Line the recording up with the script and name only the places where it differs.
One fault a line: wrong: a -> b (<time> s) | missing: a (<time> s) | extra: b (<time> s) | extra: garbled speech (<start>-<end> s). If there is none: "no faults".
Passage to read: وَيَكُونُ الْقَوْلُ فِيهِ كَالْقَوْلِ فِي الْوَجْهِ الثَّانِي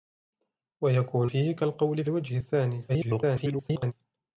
missing: الْقَوْلُ (1.3 s)
missing: فِي (2.0 s)
extra: garbled speech (2.9-3.9 s)